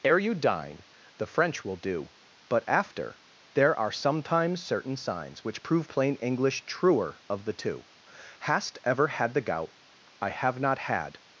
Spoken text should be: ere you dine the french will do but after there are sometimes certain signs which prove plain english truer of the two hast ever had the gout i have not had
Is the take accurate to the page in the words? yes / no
yes